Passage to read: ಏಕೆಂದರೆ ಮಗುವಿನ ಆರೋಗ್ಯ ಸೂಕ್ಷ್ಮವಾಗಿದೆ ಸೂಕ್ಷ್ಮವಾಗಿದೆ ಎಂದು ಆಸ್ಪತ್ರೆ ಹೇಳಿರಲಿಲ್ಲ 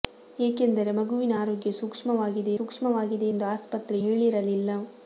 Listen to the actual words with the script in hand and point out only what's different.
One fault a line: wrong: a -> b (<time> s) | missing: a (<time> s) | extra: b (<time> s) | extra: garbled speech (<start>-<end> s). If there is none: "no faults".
no faults